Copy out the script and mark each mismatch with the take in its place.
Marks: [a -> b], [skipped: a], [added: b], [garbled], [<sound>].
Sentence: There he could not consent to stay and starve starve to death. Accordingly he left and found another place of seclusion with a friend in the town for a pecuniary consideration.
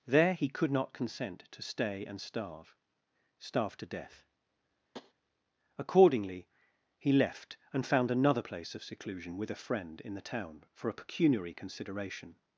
There he could not consent to stay and starve starve to death. [tap] Accordingly he left and found another place of seclusion with a friend in the town for a pecuniary consideration.